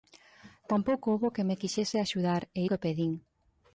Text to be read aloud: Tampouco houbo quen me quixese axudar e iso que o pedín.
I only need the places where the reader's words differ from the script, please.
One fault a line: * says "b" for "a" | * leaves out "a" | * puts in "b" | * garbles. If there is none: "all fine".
* leaves out "iso"